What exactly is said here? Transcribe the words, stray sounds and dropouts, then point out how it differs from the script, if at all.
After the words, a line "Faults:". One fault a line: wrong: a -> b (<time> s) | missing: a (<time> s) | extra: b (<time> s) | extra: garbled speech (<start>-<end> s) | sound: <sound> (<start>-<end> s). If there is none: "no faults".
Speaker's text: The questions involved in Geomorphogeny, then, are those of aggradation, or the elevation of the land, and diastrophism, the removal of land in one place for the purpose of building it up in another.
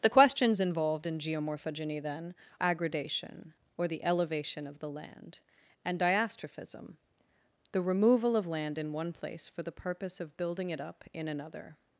The questions involved in Geomorphogeny, then, aggradation, or the elevation of the land, and diastrophism, the removal of land in one place for the purpose of building it up in another.
Faults:
missing: are those of (2.3 s)